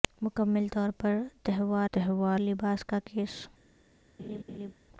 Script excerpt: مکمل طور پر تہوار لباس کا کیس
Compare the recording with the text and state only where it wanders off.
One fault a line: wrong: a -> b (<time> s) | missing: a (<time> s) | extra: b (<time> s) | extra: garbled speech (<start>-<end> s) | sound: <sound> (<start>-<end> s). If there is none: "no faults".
extra: تہوار (1.9 s)
sound: laugh (4.2-4.7 s)